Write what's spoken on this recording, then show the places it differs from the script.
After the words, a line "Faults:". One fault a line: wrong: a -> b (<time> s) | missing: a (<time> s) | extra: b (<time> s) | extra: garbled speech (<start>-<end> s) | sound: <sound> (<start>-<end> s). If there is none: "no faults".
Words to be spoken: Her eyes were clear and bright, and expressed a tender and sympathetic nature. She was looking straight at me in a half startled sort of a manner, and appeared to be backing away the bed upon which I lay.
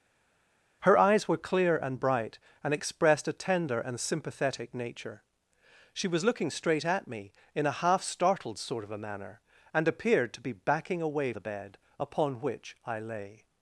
Her eyes were clear and bright, and expressed a tender and sympathetic nature. She was looking straight at me in a half startled sort of a manner, and appeared to be backing away the bed upon which I lay.
Faults:
no faults